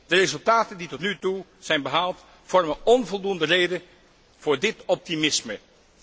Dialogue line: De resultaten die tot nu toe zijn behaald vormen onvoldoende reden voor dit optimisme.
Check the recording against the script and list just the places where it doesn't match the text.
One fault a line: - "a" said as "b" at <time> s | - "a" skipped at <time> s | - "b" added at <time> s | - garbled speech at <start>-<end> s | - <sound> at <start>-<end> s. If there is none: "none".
none